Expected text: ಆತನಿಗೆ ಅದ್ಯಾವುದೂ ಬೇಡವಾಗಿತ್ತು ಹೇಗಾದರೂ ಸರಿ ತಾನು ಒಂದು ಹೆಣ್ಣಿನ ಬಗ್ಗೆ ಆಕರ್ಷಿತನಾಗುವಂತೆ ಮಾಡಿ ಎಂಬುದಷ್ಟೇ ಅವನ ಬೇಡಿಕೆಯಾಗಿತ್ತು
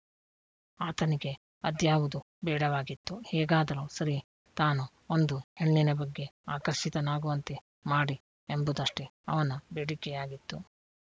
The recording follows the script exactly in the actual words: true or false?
true